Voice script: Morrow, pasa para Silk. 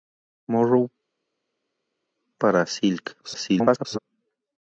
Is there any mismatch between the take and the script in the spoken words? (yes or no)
yes